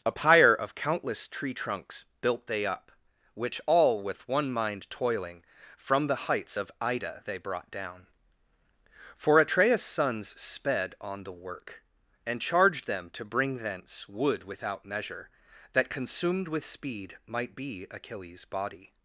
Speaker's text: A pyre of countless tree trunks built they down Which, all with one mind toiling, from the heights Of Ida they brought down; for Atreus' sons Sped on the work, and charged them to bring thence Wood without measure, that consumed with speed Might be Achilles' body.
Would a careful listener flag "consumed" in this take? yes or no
no